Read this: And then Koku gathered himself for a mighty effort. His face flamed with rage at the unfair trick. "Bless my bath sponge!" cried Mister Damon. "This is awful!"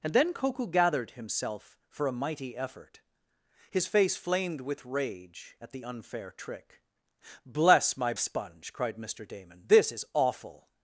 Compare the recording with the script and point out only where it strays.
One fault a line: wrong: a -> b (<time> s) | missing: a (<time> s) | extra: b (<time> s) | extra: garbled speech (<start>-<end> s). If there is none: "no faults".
missing: bath (8.1 s)